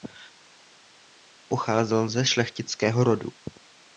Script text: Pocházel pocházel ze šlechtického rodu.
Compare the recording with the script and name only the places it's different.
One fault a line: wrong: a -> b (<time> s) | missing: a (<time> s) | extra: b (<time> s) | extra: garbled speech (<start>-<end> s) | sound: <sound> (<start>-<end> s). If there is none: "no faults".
missing: pocházel (2.1 s)